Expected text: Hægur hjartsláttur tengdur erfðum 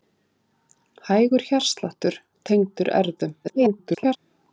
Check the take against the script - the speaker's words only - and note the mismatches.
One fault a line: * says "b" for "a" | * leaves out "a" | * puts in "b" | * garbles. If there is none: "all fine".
* garbles